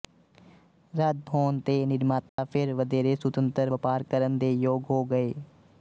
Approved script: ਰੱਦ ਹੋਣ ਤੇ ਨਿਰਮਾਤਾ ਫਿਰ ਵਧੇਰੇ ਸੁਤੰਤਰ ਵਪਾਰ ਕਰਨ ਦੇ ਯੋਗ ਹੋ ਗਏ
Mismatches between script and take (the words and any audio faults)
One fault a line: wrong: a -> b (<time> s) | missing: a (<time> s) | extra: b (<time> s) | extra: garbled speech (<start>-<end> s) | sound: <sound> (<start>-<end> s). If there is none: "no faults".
sound: dropout (2.3-2.4 s)